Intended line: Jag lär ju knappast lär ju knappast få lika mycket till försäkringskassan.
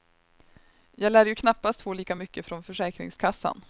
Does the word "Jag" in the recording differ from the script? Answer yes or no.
no